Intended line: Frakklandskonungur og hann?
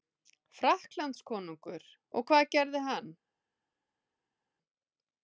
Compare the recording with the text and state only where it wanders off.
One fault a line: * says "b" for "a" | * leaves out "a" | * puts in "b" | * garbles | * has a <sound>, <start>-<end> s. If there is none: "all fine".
* puts in "hvað gerði"